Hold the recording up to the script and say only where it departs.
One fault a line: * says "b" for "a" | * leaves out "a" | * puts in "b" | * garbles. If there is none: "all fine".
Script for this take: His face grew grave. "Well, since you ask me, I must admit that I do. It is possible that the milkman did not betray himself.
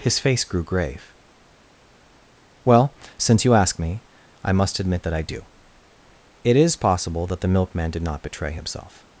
all fine